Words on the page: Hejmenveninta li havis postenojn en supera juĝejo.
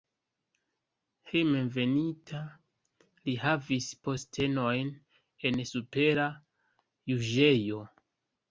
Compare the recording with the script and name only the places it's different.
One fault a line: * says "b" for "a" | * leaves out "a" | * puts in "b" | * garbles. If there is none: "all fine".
all fine